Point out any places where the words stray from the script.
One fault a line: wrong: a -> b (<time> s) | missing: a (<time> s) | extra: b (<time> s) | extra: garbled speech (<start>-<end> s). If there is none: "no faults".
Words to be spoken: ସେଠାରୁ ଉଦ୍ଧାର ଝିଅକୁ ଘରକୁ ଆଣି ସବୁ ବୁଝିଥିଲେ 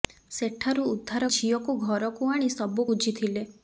no faults